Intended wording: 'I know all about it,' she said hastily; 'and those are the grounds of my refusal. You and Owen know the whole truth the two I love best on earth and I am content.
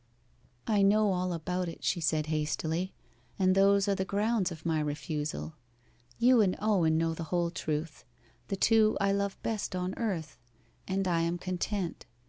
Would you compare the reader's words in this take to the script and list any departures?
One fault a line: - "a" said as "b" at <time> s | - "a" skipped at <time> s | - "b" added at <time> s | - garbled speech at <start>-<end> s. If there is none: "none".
none